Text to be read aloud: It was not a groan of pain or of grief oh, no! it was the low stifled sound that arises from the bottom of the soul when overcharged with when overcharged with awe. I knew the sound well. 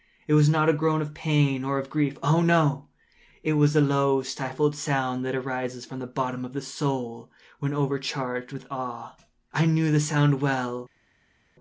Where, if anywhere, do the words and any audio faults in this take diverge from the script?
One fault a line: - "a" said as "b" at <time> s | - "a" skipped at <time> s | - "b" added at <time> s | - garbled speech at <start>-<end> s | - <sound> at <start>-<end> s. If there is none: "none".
- "when overcharged with" skipped at 8.7 s